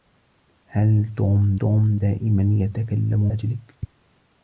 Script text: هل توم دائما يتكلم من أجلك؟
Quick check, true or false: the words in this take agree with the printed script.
false